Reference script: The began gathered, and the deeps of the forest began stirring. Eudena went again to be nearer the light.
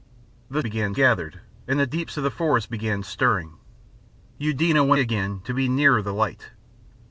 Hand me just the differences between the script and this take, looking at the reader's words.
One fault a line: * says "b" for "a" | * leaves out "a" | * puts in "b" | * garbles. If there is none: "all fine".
all fine